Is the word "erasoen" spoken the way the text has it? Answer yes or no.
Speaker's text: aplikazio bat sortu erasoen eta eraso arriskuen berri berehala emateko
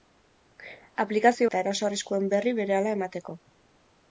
no